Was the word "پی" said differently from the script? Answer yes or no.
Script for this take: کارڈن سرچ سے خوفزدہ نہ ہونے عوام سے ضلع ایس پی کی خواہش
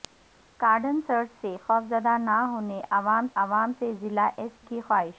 yes